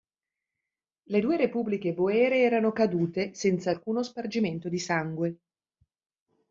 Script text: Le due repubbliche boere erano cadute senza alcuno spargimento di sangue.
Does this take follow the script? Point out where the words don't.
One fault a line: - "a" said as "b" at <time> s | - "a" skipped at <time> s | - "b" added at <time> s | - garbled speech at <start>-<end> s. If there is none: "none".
none